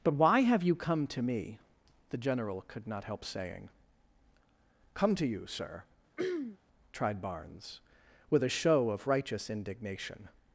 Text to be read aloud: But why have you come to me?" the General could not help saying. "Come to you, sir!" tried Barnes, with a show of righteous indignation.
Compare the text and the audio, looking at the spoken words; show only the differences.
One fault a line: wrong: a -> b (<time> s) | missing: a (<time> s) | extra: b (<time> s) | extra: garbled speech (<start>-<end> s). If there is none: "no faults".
no faults